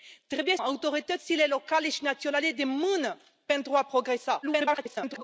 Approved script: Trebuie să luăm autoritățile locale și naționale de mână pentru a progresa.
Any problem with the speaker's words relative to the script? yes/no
yes